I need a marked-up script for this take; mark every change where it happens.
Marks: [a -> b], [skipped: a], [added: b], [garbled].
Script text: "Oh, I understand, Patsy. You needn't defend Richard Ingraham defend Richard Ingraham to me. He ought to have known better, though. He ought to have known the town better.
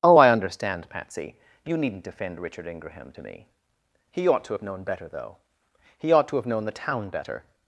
"Oh, I understand, Patsy. You needn't defend Richard Ingraham [skipped: defend Richard Ingraham] to me. He ought to have known better, though. He ought to have known the town better.